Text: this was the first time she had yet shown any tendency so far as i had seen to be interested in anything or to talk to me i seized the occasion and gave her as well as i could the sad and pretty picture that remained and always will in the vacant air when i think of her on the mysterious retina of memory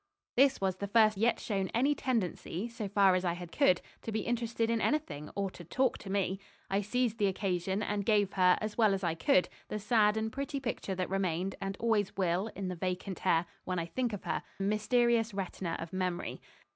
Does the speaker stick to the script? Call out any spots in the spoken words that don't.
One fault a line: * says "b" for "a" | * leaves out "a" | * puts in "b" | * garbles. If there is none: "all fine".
* leaves out "time she had"
* says "could" for "seen"
* leaves out "on"